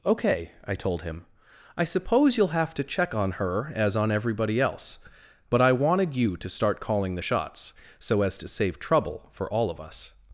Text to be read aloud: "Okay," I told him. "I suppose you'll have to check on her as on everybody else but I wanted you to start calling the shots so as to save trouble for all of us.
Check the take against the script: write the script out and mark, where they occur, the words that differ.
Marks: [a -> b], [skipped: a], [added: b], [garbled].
"Okay," I told him. "I suppose you'll have to check on her as on everybody else but I wanted you to start calling the shots so as to save trouble for all of us.